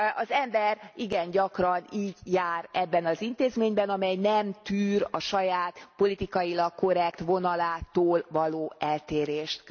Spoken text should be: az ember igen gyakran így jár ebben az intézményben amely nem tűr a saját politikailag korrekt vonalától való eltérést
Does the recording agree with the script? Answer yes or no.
yes